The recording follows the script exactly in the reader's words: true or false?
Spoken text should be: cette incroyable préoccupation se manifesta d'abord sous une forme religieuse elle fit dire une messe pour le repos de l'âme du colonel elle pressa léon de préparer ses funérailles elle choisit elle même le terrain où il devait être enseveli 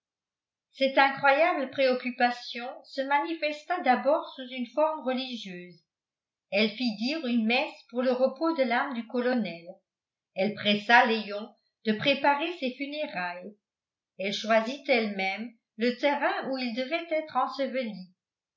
true